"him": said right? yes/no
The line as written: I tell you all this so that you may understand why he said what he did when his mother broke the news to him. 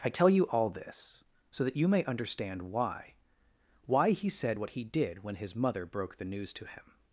yes